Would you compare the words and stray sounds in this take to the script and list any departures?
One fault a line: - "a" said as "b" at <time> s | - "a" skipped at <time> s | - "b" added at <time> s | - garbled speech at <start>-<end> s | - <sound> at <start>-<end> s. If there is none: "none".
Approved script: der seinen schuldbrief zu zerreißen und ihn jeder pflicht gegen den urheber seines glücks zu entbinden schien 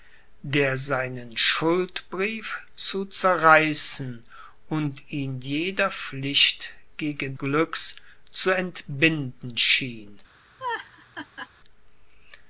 - "den urheber seines" skipped at 7.4 s
- laugh at 10.6-11.5 s